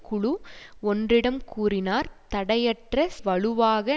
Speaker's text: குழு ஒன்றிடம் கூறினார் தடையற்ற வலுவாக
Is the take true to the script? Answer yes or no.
yes